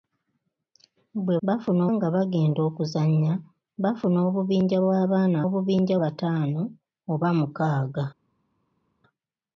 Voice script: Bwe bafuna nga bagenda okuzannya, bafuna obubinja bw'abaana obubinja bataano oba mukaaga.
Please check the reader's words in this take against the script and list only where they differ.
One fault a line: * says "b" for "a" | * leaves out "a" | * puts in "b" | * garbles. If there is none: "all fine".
all fine